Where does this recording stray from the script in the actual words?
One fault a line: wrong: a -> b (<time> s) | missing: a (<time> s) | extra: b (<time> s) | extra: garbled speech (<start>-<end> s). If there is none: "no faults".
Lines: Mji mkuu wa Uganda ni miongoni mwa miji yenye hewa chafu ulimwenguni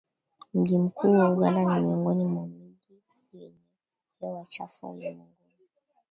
no faults